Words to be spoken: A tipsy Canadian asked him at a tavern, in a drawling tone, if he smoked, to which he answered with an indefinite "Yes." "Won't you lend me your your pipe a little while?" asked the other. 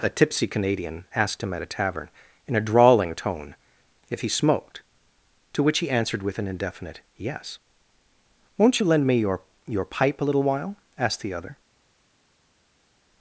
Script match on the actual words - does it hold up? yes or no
yes